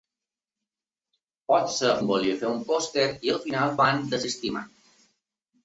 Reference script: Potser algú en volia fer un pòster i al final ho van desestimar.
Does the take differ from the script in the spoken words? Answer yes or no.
yes